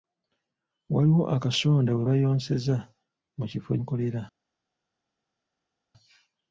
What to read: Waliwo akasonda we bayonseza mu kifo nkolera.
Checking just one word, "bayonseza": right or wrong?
right